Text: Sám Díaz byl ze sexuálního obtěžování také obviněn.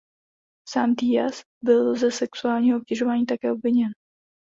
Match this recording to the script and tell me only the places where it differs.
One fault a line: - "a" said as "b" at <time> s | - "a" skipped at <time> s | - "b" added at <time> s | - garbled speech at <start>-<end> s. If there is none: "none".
none